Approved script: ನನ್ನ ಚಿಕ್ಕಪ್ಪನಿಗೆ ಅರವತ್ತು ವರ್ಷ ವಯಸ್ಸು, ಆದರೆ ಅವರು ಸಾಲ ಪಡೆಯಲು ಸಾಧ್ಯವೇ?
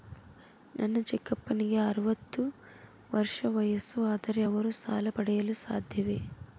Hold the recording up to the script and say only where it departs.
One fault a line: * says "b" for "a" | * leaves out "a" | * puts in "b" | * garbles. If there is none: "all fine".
all fine